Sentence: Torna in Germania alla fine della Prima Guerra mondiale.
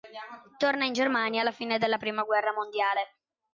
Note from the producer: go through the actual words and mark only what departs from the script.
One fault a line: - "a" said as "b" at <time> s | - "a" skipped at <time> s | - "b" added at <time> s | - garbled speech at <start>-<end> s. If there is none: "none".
none